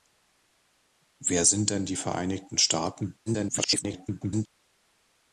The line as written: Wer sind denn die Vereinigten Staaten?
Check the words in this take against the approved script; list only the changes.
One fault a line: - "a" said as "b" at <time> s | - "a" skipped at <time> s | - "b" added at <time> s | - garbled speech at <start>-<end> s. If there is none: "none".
- garbled speech at 3.3-4.5 s